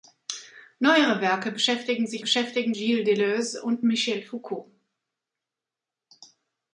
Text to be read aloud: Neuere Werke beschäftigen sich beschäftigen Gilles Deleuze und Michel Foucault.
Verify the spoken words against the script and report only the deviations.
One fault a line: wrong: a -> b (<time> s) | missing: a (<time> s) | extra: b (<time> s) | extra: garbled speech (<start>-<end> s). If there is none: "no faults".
no faults